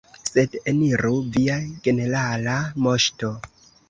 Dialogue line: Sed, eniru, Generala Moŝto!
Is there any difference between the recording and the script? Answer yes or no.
yes